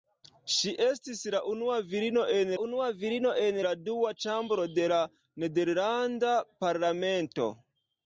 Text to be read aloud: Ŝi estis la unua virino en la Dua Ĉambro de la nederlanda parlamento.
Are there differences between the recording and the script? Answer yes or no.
yes